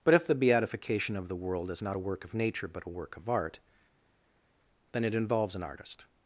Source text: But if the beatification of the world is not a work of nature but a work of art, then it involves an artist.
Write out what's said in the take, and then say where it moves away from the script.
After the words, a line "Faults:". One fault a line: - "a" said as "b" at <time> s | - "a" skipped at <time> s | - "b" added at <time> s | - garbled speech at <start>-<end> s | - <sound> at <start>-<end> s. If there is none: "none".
But if the beatification of the world is not a work of nature but a work of art, then it involves an artist.
Faults:
none